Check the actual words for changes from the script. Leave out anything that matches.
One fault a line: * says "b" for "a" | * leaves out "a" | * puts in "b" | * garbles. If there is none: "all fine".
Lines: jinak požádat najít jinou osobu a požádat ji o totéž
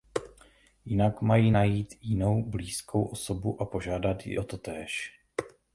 * says "mají" for "požádat"
* puts in "blízkou"